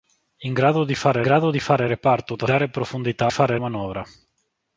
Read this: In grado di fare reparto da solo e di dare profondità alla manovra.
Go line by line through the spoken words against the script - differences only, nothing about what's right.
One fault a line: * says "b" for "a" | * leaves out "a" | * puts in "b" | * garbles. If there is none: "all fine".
* says "grado di fare reparto da" for "reparto da solo e di"
* says "fare" for "alla"